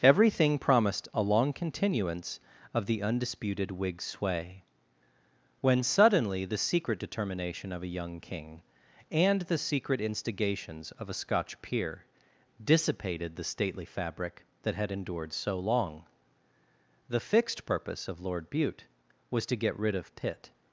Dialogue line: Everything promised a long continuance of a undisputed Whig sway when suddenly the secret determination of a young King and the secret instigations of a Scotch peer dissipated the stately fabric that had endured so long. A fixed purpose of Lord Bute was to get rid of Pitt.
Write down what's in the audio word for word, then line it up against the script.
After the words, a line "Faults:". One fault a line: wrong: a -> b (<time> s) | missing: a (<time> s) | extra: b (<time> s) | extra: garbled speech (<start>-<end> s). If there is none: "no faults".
Everything promised a long continuance of the undisputed Whig sway when suddenly the secret determination of a young King and the secret instigations of a Scotch peer dissipated the stately fabric that had endured so long. The fixed purpose of Lord Bute was to get rid of Pitt.
Faults:
wrong: a -> the (2.9 s)
wrong: A -> The (17.1 s)